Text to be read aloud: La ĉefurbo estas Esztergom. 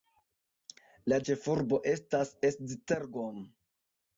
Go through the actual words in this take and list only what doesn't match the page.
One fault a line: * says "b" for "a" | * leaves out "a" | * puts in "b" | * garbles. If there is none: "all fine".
all fine